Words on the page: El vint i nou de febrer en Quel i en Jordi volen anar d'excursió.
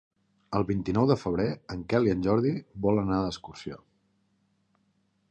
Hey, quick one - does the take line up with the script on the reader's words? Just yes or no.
yes